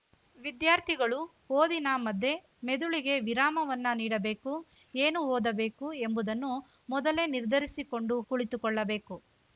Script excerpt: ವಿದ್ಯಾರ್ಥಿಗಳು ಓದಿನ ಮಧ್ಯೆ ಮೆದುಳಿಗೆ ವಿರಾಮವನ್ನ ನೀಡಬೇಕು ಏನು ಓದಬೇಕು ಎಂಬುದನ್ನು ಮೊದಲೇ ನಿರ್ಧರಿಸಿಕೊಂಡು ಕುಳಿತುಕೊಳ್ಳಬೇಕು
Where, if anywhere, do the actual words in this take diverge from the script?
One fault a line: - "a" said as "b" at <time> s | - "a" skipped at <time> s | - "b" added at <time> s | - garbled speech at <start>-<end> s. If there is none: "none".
none